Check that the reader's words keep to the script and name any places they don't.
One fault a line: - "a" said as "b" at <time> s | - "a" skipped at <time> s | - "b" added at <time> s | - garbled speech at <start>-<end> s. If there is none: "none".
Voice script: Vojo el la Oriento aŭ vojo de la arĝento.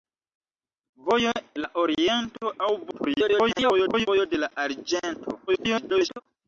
- "el" skipped at 1.3 s
- garbled speech at 2.9-4.1 s
- garbled speech at 5.5-6.2 s